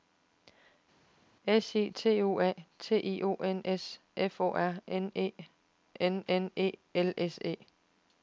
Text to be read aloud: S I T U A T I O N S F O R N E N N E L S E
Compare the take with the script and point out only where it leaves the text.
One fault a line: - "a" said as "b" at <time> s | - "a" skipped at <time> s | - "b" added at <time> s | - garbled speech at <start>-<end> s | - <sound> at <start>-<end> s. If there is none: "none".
none